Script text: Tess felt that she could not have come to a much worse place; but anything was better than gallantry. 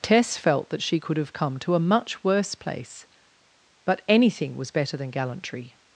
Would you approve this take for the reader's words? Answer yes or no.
no